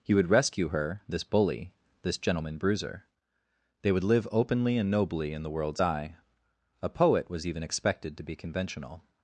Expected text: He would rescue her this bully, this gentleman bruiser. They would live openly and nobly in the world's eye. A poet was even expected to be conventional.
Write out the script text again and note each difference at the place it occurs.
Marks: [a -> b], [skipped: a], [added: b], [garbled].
He would rescue her this bully, this gentleman bruiser. They would live openly and nobly in the world's eye. A poet was even expected to be conventional.